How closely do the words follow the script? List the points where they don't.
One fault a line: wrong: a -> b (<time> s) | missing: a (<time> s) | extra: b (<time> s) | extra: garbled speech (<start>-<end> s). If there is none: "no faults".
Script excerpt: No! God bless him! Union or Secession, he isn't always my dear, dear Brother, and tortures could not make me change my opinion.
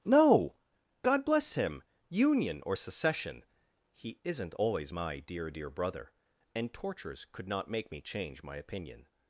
no faults